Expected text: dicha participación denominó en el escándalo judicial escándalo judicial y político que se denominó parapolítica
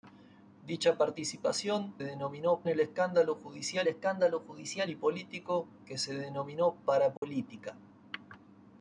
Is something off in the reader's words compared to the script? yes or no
no